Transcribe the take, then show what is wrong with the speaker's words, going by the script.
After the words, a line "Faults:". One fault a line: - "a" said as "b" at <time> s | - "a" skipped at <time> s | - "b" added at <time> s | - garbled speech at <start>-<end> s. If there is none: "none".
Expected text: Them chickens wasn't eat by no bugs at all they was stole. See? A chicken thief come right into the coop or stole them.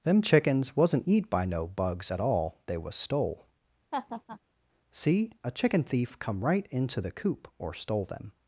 Them chickens wasn't eat by no bugs at all they was stole. See? A chicken thief come right into the coop or stole them.
Faults:
none